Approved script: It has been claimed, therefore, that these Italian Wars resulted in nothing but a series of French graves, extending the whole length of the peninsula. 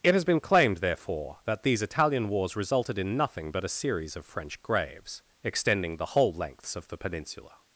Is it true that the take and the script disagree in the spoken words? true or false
true